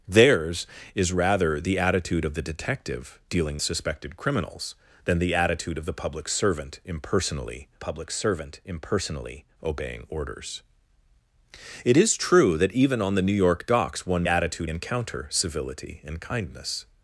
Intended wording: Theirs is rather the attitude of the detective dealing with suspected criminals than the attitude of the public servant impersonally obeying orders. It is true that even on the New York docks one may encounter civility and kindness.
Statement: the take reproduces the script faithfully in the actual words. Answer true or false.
false